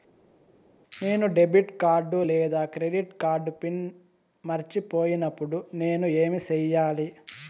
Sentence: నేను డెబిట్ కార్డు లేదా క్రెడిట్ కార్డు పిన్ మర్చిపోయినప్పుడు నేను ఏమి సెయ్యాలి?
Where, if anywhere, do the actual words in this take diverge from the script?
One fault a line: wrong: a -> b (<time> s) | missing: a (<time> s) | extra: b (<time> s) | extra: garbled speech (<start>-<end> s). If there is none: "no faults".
no faults